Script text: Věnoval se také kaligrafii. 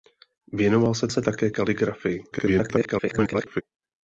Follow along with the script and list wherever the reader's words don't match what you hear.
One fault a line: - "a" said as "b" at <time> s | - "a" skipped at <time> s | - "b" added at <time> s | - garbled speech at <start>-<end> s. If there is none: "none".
- "se" added at 1.1 s
- garbled speech at 2.3-3.6 s